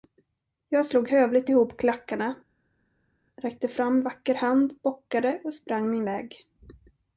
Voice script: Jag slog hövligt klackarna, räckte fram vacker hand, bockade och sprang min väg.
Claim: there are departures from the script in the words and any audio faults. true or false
true